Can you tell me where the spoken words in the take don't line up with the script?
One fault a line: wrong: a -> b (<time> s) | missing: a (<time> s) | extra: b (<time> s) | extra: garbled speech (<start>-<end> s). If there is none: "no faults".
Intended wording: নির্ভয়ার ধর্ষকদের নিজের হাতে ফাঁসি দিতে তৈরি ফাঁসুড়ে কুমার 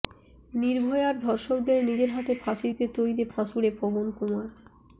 extra: পবন (3.8 s)